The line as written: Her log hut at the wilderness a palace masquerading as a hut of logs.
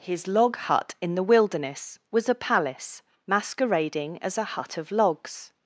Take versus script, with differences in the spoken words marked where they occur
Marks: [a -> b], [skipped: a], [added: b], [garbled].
[Her -> His] log hut [at -> in] the wilderness [added: was] a palace masquerading as a hut of logs.